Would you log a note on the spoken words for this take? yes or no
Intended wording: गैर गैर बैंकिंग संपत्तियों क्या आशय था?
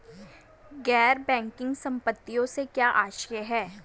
yes